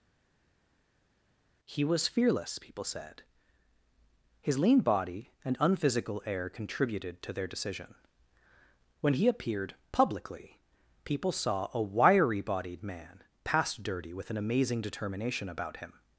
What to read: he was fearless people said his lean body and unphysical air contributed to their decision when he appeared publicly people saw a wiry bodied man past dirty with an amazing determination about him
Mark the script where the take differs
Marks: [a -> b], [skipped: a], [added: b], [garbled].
he was fearless people said his lean body and unphysical air contributed to their decision when he appeared publicly people saw a wiry bodied man past dirty with an amazing determination about him